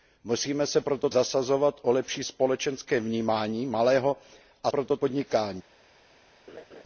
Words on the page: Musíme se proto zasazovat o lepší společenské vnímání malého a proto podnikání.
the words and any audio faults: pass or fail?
fail